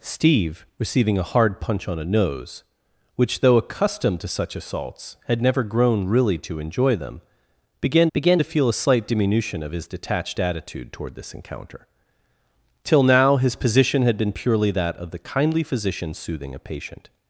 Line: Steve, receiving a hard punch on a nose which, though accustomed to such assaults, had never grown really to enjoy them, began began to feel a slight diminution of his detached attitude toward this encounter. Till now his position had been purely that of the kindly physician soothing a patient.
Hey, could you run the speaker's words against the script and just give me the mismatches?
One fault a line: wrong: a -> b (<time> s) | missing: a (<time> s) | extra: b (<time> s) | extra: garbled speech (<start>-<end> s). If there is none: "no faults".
no faults